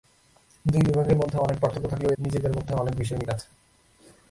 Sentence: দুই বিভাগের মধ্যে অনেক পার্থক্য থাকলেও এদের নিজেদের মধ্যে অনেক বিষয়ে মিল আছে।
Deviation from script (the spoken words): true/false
true